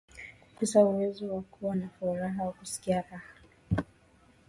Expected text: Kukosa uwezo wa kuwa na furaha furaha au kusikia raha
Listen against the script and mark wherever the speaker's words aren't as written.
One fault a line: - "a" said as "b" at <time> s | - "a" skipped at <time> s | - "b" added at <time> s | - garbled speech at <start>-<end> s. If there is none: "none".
- "furaha" skipped at 2.4 s